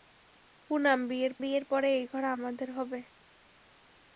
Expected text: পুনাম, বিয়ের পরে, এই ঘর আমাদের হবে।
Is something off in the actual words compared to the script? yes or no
yes